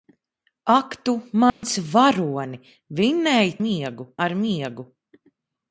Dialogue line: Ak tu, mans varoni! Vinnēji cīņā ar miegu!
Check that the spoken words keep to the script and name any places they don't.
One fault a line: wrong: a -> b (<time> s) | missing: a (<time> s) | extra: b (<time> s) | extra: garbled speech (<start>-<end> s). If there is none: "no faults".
wrong: cīņā -> miegu (3.7 s)